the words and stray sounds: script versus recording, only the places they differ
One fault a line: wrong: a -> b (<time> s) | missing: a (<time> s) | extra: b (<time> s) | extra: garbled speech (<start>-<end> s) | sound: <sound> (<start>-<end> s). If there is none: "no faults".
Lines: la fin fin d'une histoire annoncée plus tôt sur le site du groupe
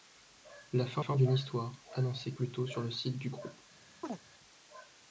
sound: chirp (4.0-4.2 s)